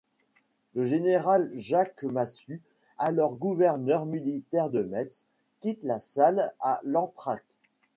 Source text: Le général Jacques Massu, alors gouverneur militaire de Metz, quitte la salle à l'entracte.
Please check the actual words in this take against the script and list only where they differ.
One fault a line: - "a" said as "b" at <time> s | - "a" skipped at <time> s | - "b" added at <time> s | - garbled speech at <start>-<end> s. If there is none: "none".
none